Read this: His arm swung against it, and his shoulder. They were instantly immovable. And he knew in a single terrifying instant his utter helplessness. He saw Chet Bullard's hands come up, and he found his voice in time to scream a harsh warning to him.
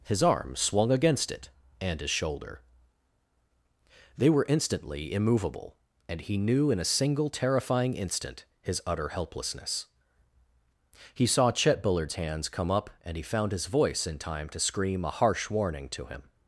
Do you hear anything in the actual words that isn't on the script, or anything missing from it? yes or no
no